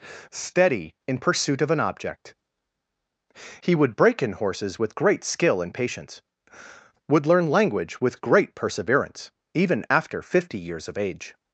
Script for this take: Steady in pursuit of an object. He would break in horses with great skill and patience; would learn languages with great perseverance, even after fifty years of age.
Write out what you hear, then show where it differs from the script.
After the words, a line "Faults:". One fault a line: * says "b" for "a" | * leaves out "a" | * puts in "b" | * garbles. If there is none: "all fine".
Steady in pursuit of an object. He would break in horses with great skill and patience; would learn language with great perseverance, even after fifty years of age.
Faults:
* says "language" for "languages"